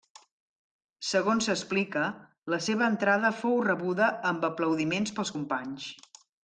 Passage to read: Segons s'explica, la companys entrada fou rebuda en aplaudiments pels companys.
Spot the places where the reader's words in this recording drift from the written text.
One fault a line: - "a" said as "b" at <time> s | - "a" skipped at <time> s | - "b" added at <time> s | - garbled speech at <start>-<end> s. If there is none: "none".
- "companys" said as "seva" at 2.7 s
- "en" said as "amb" at 4.3 s